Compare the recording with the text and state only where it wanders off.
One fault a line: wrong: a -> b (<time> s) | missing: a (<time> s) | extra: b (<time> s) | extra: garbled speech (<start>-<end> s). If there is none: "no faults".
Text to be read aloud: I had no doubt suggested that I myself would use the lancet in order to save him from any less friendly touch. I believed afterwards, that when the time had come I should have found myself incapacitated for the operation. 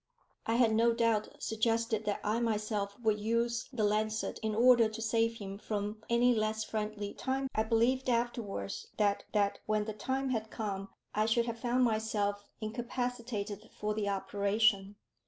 wrong: touch -> time (7.1 s)
extra: that (9.3 s)